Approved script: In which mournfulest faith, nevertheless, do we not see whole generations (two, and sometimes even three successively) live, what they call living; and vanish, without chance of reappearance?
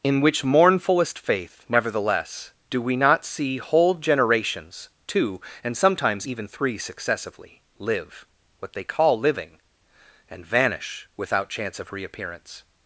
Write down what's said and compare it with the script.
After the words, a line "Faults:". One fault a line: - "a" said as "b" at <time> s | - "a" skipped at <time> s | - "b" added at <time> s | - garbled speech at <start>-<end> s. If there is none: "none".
In which mournfulest faith, nevertheless, do we not see whole generations (two, and sometimes even three successively) live, what they call living; and vanish, without chance of reappearance?
Faults:
none